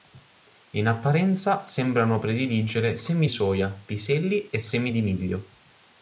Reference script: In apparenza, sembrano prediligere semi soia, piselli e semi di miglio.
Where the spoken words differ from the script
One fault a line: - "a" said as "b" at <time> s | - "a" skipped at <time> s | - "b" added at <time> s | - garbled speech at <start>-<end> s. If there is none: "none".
none